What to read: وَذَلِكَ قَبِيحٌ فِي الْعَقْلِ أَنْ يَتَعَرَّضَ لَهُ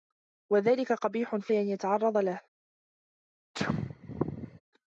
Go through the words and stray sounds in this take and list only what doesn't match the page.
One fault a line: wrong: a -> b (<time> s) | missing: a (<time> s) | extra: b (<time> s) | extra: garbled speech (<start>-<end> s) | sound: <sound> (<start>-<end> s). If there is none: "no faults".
missing: الْعَقْلِ (1.5 s)
sound: sneeze (3.5-4.6 s)